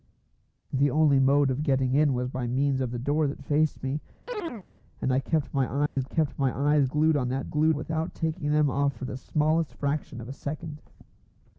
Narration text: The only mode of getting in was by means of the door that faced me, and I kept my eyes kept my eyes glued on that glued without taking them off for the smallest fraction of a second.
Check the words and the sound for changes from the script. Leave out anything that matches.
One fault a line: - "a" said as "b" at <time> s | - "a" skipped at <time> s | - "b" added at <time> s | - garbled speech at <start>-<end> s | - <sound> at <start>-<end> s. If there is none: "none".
- chirp at 4.3-4.7 s
- dropout at 5.9-6.0 s